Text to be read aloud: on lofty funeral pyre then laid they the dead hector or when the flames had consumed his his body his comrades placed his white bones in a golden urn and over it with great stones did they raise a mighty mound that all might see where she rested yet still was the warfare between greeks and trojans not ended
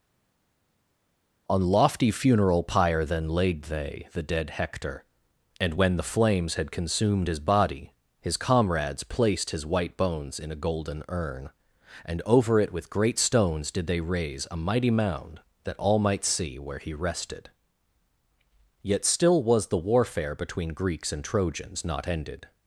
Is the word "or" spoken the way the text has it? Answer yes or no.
no